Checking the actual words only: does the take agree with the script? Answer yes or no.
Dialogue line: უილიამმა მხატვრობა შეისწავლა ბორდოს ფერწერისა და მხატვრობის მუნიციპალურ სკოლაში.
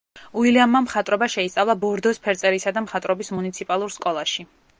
yes